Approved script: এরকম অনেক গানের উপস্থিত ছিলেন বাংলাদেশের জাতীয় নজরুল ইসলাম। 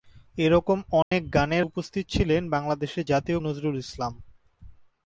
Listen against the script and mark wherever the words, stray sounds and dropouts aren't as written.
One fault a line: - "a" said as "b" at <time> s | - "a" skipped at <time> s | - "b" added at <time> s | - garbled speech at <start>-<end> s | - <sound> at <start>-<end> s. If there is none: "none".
- dropout at 1.0-1.1 s